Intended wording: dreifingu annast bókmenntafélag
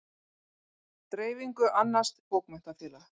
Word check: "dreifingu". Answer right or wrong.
right